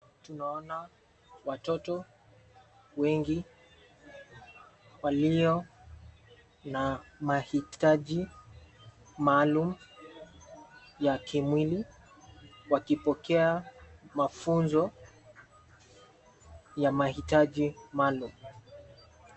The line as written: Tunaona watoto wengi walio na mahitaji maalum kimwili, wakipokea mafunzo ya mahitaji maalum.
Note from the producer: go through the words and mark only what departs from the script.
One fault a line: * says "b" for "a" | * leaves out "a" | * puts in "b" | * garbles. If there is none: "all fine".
* puts in "ya"